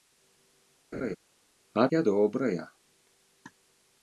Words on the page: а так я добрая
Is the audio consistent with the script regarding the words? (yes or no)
no